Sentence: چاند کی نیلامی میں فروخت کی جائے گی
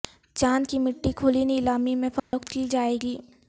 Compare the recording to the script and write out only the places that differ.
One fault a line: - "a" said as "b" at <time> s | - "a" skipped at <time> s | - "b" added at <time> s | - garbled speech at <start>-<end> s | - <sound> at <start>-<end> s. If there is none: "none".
- "مٹی کھلی" added at 0.8 s
- dropout at 2.2-2.3 s